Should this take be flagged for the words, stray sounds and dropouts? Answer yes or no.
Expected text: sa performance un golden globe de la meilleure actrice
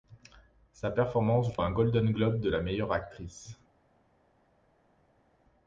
no